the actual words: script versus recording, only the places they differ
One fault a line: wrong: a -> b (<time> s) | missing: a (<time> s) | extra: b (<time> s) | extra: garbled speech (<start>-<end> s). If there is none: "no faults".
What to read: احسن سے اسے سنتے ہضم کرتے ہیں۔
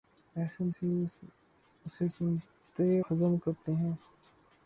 no faults